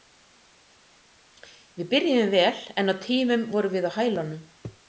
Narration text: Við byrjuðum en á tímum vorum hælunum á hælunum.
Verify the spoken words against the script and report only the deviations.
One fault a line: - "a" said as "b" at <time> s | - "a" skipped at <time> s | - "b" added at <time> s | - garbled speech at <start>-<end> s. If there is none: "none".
- "vel" added at 2.4 s
- "hælunum" said as "við" at 3.8 s